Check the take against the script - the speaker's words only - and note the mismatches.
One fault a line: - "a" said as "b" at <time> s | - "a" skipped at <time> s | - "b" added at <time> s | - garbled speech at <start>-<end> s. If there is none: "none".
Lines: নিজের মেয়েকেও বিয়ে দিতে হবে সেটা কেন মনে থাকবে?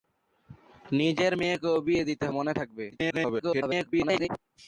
- "হবে সেটা কেন" skipped at 2.2 s
- garbled speech at 2.9-4.3 s